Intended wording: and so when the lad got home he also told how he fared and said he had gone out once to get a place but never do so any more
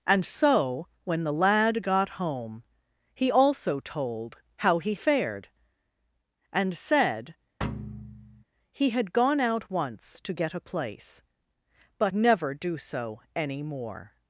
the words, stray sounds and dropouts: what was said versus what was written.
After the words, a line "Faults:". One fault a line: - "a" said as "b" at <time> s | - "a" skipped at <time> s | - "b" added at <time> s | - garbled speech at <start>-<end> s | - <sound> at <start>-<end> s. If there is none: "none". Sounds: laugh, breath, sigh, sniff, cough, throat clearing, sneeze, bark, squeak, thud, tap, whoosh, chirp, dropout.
and so when the lad got home he also told how he fared and said he had gone out once to get a place but never do so any more
Faults:
- thud at 7.6-8.4 s